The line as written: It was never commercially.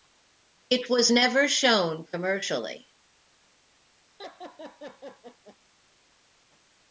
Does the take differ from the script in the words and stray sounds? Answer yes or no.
yes